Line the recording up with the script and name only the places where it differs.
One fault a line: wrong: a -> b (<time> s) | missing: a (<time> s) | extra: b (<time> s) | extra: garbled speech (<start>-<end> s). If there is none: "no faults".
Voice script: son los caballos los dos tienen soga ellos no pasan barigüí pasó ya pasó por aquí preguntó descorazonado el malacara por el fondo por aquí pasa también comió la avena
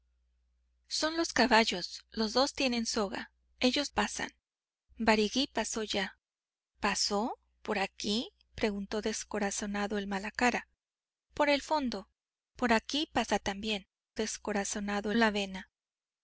missing: no (3.9 s)
wrong: comió -> descorazonado (14.2 s)